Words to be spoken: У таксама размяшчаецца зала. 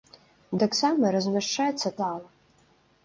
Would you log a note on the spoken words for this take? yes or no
no